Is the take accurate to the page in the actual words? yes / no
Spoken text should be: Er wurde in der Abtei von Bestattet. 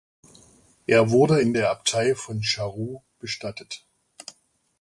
no